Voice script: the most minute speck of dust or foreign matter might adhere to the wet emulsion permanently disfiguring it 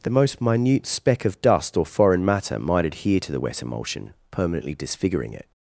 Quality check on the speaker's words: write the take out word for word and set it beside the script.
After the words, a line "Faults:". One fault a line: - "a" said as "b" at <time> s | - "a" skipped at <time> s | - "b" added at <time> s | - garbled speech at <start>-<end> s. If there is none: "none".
the most minute speck of dust or foreign matter might adhere to the wet emulsion permanently disfiguring it
Faults:
none